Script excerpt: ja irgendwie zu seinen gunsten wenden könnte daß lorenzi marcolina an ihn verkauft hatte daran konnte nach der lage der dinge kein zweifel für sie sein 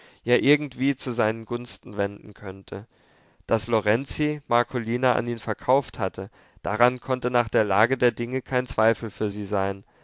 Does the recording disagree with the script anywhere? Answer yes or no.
no